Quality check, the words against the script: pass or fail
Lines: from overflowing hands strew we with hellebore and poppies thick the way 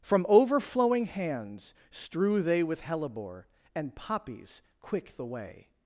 fail